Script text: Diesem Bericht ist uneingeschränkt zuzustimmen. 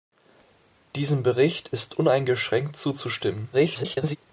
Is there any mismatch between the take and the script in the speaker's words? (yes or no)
yes